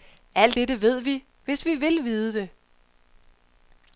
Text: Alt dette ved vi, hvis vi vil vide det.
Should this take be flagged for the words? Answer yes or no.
no